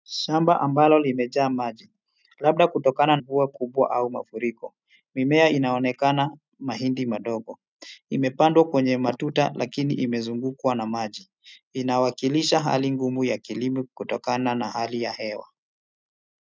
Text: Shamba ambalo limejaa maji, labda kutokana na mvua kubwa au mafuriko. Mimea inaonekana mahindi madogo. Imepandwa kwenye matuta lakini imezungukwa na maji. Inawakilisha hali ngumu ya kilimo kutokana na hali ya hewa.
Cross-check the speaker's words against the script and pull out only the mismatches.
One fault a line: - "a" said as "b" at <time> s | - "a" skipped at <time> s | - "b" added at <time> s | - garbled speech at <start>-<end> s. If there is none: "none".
- "na" skipped at 3.2 s